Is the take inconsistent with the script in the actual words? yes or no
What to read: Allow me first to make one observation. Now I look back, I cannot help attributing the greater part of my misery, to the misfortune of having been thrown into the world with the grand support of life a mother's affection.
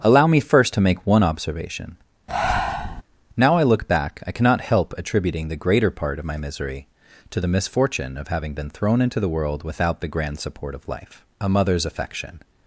yes